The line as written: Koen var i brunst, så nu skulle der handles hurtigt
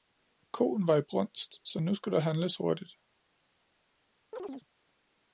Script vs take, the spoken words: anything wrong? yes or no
no